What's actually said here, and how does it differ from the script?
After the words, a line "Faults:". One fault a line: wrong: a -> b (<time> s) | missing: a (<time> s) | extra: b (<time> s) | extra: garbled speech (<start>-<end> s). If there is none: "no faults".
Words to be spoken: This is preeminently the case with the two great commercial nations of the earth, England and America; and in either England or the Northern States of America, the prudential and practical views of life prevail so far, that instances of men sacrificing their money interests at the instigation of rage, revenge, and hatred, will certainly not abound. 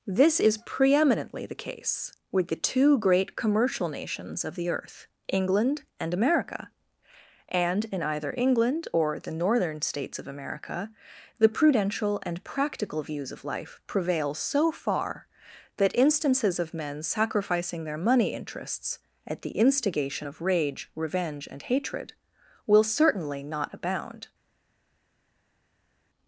This is preeminently the case with the two great commercial nations of the earth, England and America; and in either England or the Northern States of America, the prudential and practical views of life prevail so far, that instances of men sacrificing their money interests at the instigation of rage, revenge, and hatred, will certainly not abound.
Faults:
no faults